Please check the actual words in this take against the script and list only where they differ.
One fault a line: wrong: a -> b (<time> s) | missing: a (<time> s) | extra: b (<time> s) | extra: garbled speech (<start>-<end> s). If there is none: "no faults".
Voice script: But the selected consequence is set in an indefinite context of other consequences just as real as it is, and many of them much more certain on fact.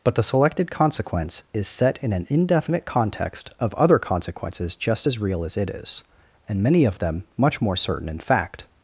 wrong: on -> in (8.1 s)